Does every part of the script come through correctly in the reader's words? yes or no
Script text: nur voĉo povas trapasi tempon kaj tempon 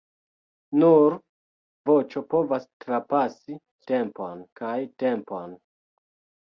yes